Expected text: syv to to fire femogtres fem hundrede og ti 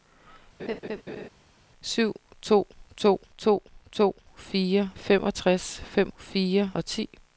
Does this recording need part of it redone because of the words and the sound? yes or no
yes